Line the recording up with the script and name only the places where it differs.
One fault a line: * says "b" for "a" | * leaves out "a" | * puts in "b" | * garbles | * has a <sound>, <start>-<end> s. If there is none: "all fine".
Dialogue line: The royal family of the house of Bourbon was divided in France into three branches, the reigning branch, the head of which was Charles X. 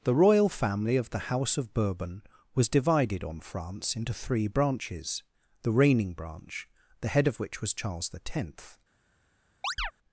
* says "on" for "in"
* has a chirp, 9.6-9.9 s